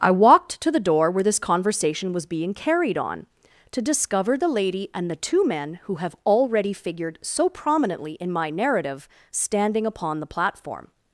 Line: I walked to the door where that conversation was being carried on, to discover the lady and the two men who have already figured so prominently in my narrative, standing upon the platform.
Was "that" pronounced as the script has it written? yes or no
no